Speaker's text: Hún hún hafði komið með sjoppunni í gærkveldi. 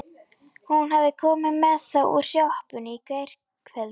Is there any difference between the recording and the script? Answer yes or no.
yes